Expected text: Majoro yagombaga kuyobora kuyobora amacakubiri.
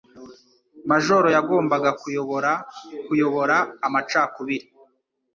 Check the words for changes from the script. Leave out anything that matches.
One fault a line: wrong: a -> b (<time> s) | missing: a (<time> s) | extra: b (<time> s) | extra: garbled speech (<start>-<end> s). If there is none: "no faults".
no faults